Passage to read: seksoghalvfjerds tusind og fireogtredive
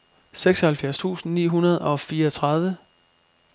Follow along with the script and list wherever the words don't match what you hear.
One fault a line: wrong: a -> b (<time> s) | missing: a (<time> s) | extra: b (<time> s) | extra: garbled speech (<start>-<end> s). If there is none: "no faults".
extra: ni hundrede (1.3 s)